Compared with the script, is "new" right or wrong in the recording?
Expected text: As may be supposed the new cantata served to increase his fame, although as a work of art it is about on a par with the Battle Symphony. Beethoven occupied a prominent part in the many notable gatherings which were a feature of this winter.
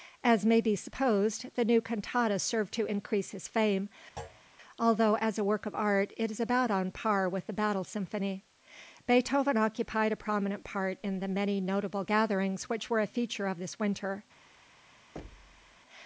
right